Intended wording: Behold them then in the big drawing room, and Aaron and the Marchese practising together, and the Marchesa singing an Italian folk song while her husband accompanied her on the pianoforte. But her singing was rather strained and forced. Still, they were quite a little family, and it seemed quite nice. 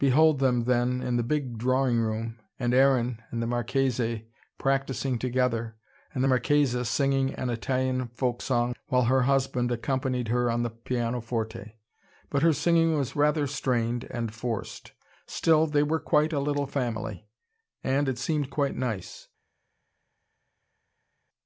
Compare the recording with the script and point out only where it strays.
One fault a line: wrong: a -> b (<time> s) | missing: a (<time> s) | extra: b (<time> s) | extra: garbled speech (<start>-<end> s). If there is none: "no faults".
no faults